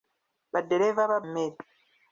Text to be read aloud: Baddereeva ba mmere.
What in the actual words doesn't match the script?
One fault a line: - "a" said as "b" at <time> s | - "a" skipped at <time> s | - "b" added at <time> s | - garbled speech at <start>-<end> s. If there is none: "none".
none